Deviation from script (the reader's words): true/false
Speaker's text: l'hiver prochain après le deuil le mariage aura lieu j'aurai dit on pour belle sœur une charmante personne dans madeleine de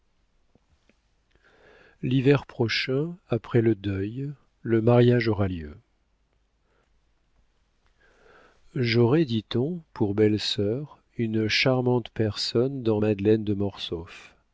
false